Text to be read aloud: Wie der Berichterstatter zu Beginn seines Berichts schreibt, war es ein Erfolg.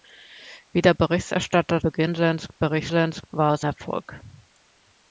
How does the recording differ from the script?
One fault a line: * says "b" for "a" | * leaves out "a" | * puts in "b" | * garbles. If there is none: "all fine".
* leaves out "zu"
* says "seines" for "schreibt"
* leaves out "ein"